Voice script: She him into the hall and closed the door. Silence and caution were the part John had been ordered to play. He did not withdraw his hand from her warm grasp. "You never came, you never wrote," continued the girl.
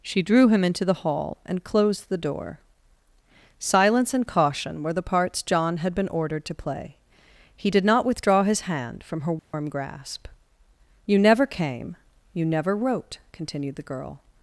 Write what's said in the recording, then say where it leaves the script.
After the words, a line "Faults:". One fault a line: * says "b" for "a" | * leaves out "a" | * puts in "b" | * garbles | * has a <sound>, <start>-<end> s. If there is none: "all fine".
She drew him into the hall and closed the door. Silence and caution were the parts John had been ordered to play. He did not withdraw his hand from her warm grasp. "You never came, you never wrote," continued the girl.
Faults:
* puts in "drew"
* says "parts" for "part"
* has a dropout, 9.4-9.5 s